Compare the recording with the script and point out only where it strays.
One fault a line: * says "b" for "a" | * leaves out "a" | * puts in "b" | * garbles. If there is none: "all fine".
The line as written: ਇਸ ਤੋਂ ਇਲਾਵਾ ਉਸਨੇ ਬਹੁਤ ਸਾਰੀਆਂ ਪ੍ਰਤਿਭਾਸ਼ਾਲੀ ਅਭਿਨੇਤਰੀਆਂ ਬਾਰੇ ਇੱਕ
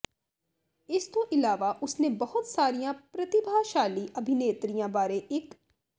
all fine